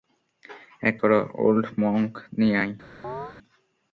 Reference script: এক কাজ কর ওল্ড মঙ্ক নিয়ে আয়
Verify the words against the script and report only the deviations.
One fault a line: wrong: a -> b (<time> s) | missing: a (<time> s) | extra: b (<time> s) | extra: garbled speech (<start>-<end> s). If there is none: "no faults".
missing: কাজ (0.9 s)